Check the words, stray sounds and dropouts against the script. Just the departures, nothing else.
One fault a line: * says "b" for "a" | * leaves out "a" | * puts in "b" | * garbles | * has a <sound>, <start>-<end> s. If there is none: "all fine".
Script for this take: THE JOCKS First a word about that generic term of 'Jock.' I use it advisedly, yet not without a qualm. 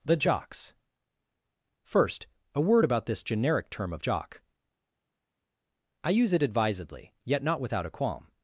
* says "this" for "that"